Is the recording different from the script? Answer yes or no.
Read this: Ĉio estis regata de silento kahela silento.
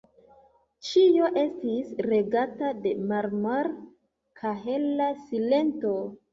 yes